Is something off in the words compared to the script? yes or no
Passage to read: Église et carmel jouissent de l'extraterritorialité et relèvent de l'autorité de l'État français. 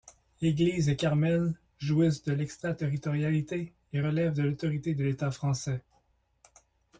no